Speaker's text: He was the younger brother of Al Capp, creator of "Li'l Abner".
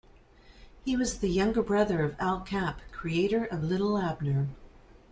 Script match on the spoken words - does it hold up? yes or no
yes